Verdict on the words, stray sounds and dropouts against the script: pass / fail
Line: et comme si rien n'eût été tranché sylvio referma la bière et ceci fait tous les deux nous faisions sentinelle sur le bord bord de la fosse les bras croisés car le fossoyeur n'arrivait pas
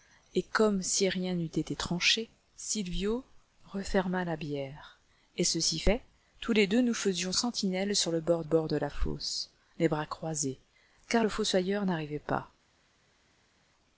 pass